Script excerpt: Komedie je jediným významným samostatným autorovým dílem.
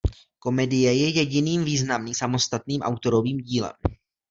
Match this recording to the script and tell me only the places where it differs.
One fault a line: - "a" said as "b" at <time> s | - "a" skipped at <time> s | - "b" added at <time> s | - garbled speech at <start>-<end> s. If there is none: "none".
none